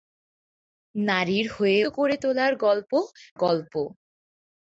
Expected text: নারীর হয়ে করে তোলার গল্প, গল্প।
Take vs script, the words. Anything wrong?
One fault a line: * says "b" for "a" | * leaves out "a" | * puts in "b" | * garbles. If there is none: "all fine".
all fine